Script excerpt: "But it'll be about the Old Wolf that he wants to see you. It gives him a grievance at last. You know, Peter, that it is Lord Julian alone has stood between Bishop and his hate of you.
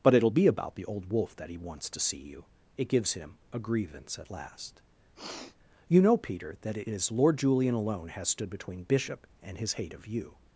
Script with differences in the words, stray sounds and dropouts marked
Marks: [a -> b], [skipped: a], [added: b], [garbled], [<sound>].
"But it'll be about the Old Wolf that he wants to see you. It gives him a grievance at last. [sniff] You know, Peter, that it is Lord Julian alone has stood between Bishop and his hate of you.